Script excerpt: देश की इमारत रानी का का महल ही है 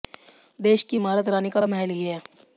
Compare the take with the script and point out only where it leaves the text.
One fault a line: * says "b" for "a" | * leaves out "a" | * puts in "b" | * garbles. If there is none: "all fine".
all fine